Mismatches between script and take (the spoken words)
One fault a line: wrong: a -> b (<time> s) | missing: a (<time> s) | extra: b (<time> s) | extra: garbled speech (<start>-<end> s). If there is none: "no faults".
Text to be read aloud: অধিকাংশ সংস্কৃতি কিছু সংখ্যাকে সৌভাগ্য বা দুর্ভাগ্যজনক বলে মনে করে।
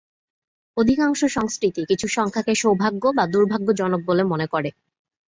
no faults